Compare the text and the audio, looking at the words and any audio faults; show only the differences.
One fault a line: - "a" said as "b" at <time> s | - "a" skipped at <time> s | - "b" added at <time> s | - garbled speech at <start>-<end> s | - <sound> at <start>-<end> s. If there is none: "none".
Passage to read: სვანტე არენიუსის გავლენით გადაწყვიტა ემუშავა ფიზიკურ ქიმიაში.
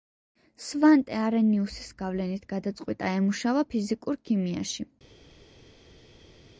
none